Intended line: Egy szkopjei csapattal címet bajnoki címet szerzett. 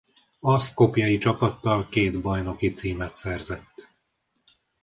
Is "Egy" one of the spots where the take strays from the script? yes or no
yes